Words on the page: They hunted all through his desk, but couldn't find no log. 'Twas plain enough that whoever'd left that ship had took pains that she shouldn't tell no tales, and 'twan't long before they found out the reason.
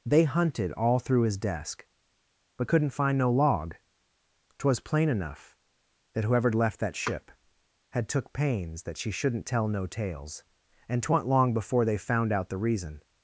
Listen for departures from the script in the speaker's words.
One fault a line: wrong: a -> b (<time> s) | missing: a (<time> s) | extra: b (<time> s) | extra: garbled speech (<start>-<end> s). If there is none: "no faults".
no faults